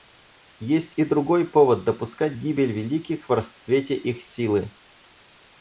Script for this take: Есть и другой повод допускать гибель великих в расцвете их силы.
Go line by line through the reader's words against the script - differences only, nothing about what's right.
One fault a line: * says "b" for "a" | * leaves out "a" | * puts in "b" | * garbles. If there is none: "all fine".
all fine